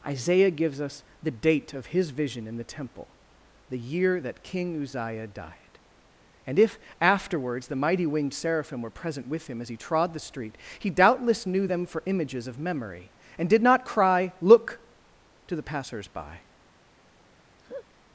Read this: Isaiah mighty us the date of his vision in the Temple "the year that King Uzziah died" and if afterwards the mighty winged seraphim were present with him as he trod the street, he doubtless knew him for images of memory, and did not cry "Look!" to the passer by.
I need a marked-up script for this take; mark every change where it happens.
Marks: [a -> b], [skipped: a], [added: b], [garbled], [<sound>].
Isaiah [mighty -> gives] us the date of his vision in the Temple "the year that King Uzziah died" and if afterwards the mighty winged seraphim were present with him as he trod the street, he doubtless knew [him -> them] for images of memory, and did not cry "Look!" to the [passer -> passers] by. [laugh]